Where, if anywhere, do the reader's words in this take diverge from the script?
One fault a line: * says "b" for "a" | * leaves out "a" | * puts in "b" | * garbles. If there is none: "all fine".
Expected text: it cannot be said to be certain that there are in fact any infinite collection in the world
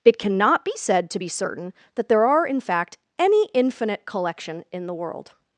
all fine